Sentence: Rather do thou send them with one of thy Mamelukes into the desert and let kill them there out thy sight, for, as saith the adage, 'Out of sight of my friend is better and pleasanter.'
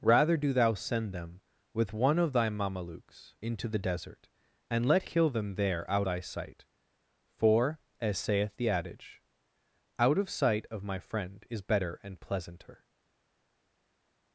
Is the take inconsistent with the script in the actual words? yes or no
no